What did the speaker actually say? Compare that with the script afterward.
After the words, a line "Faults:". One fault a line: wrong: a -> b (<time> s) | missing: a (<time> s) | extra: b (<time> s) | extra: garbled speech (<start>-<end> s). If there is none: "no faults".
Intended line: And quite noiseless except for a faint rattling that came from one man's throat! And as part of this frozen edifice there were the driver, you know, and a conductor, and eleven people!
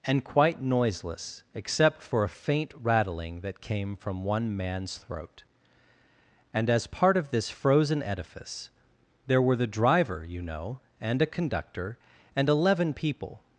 And quite noiseless except for a faint rattling that came from one man's throat! And as part of this frozen edifice there were the driver, you know, and a conductor, and eleven people!
Faults:
no faults